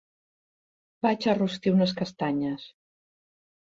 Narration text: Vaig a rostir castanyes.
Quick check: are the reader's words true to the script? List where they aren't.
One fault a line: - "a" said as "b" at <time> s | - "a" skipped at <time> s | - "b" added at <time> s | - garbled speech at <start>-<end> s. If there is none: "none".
- "unes" added at 1.8 s